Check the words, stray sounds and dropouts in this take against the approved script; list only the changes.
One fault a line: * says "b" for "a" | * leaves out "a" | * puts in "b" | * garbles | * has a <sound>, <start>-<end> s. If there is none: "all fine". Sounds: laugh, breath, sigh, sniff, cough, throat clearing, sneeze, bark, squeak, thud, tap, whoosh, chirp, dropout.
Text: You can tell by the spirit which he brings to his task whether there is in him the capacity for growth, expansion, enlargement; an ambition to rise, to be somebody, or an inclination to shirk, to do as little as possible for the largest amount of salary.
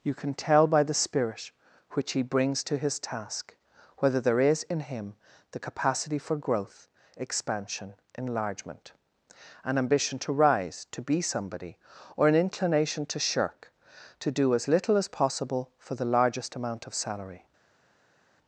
all fine